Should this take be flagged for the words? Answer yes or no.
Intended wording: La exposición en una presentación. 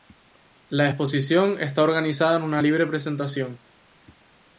yes